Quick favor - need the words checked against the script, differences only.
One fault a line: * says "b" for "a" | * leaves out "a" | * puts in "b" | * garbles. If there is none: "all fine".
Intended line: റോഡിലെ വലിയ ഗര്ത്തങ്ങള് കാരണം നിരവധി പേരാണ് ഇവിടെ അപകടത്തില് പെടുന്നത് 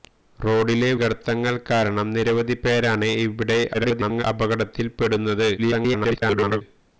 * leaves out "വലിയ"
* garbles
* garbles